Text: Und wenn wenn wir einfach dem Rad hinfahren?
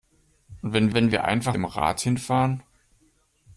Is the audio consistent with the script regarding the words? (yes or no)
yes